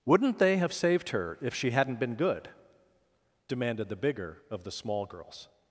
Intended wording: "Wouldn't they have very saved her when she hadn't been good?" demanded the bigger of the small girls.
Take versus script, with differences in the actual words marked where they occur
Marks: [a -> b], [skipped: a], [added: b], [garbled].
"Wouldn't they have [skipped: very] saved her [when -> if] she hadn't been good?" demanded the bigger of the small girls.